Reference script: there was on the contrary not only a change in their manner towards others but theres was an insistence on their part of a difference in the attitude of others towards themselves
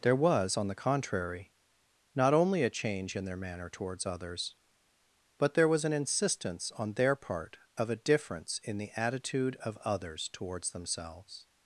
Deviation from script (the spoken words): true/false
true